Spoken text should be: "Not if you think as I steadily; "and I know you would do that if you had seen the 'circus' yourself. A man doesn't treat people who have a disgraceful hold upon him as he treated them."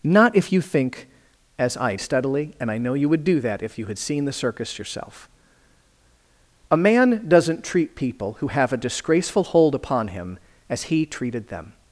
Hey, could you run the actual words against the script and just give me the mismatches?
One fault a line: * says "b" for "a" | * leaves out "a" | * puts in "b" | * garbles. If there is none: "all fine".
all fine